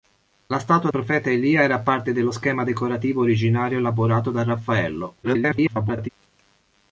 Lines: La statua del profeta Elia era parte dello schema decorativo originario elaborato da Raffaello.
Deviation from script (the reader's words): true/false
true